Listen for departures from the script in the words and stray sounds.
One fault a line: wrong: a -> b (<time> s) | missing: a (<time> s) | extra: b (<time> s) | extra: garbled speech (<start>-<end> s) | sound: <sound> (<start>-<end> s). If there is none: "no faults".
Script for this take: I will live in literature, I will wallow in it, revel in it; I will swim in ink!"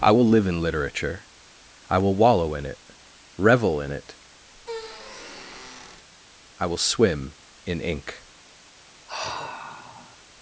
sound: squeak (4.5-6.1 s)
sound: sigh (9.1-10.2 s)